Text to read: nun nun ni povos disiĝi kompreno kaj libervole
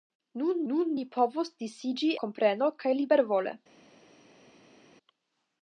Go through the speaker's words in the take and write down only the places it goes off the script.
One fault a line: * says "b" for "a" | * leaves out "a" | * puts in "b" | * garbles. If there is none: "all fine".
all fine